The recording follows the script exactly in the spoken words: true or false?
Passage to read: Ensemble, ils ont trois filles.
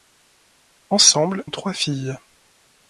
false